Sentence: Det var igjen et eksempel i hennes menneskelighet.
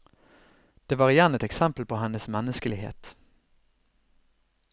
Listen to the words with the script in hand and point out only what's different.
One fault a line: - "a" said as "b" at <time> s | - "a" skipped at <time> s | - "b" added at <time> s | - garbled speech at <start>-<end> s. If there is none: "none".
- "i" said as "på" at 1.8 s